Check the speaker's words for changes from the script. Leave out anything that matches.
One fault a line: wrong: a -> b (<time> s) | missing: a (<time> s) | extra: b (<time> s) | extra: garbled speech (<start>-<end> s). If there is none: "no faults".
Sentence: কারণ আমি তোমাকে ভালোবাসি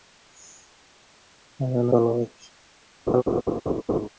missing: আমি তোমাকে (1.9 s)